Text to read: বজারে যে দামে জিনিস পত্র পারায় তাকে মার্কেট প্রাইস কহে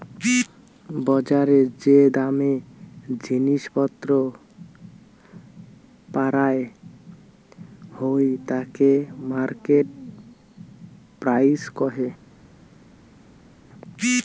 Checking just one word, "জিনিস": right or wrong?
right